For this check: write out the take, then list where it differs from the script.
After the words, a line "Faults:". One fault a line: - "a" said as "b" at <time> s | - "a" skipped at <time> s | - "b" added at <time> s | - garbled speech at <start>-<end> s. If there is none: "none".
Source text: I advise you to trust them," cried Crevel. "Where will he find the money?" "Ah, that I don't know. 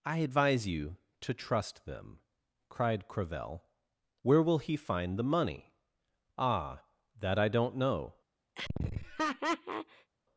I advise you to trust them," cried Crevel. "Where will he find the money?" "Ah, that I don't know.
Faults:
none